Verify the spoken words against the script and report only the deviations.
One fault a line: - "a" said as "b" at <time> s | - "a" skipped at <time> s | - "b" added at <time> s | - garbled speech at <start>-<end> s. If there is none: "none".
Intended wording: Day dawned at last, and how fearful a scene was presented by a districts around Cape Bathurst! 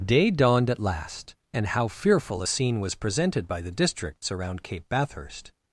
- "a" said as "the" at 3.6 s